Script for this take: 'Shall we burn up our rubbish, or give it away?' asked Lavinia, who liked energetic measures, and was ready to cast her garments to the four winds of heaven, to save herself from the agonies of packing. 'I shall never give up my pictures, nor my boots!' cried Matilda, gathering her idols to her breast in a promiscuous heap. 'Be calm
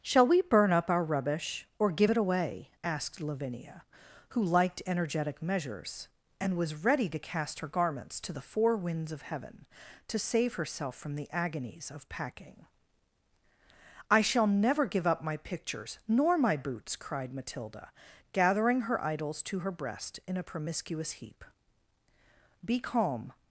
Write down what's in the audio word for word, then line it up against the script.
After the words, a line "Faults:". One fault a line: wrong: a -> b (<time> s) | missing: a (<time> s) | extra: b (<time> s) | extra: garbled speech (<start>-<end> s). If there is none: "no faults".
'Shall we burn up our rubbish, or give it away?' asked Lavinia, who liked energetic measures, and was ready to cast her garments to the four winds of heaven, to save herself from the agonies of packing. 'I shall never give up my pictures, nor my boots!' cried Matilda, gathering her idols to her breast in a promiscuous heap. 'Be calm
Faults:
no faults